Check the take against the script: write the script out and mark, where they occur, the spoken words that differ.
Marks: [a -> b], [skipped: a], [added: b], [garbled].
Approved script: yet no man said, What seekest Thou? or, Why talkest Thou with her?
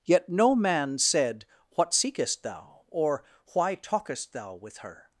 yet no man said, What seekest Thou? or, Why talkest Thou with her?